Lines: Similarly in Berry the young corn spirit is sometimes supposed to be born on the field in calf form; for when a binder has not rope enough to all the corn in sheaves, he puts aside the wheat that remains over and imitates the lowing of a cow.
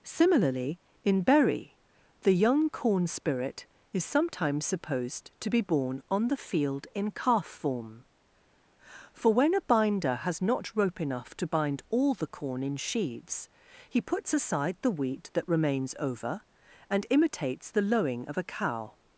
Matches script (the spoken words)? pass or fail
fail